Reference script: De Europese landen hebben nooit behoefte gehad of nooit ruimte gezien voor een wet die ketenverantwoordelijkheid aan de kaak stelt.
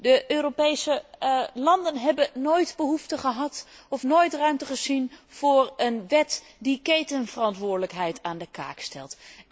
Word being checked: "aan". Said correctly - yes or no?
yes